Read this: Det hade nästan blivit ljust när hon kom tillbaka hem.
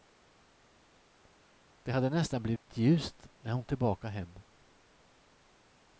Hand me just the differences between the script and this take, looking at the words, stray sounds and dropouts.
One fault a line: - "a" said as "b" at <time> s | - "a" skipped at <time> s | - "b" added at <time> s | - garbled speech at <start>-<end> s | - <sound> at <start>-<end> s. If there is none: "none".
- dropout at 2.6-2.7 s
- "kom" skipped at 3.6 s